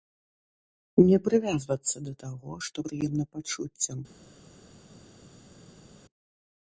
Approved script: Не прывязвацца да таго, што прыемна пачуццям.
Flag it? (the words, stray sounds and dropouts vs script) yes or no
no